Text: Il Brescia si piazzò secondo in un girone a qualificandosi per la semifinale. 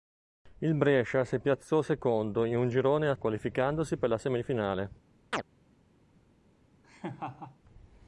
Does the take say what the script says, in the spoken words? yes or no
yes